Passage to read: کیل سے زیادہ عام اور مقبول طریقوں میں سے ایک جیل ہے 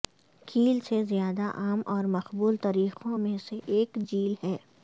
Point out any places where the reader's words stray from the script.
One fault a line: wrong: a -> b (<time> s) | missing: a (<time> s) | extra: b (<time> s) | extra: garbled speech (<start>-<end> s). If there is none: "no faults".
no faults